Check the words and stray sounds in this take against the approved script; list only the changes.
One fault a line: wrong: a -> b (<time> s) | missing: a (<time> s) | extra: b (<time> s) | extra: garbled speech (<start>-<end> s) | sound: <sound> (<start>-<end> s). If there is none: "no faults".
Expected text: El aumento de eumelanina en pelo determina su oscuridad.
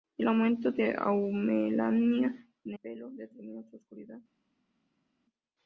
no faults